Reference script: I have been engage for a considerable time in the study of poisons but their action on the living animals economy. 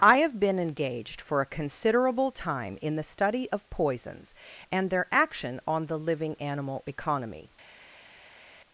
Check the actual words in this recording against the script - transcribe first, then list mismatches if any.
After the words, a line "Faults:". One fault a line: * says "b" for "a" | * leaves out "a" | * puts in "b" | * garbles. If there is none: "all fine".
I have been engaged for a considerable time in the study of poisons and their action on the living animal economy.
Faults:
* says "engaged" for "engage"
* says "and" for "but"
* says "animal" for "animals"